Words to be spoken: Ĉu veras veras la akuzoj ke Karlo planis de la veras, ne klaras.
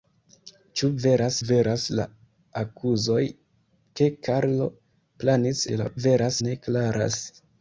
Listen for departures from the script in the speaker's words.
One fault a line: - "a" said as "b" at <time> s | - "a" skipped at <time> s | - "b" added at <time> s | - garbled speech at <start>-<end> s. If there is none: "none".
none